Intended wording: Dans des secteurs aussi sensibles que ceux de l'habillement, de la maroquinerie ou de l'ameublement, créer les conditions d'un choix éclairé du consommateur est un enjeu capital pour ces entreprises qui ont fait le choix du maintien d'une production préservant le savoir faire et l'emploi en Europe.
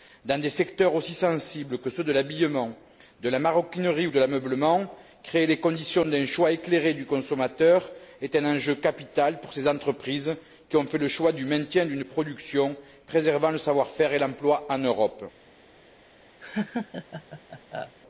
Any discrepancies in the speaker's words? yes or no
no